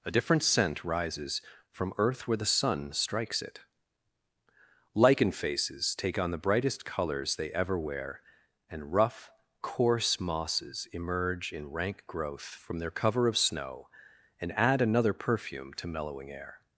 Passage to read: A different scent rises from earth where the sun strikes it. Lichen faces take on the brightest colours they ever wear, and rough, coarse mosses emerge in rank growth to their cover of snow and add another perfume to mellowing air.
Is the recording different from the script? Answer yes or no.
yes